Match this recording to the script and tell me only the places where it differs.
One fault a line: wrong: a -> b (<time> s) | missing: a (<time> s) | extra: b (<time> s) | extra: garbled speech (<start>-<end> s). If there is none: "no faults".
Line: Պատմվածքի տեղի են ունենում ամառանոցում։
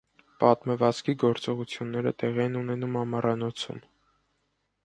extra: գործողությունները (1.2 s)